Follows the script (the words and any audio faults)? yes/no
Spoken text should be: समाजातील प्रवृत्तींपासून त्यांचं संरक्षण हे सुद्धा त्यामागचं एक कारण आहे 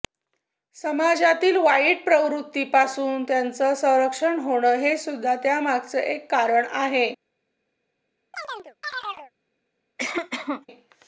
no